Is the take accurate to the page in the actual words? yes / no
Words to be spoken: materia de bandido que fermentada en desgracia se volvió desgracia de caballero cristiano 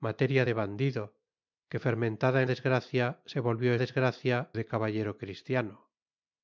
yes